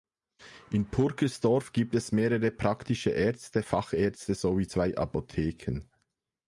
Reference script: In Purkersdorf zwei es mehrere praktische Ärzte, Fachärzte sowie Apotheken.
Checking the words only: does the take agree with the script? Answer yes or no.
no